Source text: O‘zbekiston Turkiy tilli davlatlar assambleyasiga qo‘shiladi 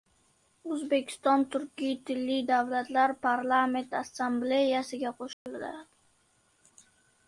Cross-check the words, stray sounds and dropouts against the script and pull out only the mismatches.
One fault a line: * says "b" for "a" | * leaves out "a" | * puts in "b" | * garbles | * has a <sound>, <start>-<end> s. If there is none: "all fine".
* puts in "parlament"
* has a dropout, 5.3-5.5 s